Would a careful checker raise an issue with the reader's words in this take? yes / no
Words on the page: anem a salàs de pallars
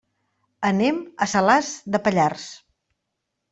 no